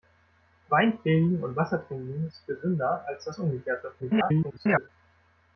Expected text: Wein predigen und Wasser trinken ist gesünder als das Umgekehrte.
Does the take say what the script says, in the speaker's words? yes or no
no